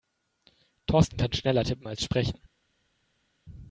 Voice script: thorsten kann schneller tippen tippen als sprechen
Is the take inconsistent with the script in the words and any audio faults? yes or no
yes